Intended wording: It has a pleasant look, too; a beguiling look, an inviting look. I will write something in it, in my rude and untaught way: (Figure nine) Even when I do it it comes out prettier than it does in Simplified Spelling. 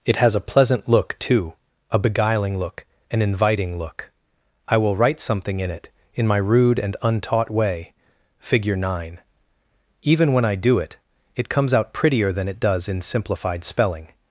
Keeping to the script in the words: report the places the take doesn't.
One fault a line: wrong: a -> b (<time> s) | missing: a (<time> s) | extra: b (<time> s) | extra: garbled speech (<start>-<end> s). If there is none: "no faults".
no faults